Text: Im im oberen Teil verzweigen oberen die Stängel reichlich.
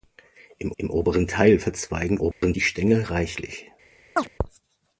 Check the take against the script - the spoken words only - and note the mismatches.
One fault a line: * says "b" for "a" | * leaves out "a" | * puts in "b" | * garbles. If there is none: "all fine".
all fine